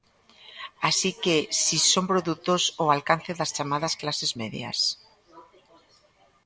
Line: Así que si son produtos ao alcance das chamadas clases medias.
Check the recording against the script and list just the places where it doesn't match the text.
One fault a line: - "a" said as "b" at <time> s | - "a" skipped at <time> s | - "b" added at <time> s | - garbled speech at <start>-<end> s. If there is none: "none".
none